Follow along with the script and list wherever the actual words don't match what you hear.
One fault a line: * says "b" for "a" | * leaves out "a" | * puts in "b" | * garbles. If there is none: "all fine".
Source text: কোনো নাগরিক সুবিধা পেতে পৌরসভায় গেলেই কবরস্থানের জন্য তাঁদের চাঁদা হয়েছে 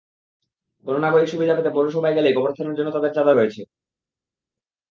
all fine